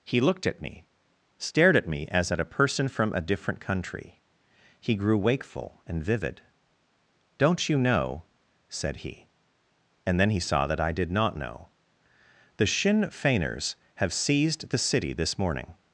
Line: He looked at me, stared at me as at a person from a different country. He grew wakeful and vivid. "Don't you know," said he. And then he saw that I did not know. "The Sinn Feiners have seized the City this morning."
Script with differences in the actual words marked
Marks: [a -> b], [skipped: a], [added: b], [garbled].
He looked at me, stared at me as at a person from a different country. He grew wakeful and vivid. "Don't you know," said he. And then he saw that I did not know. "The Sinn Feiners have seized the City this morning."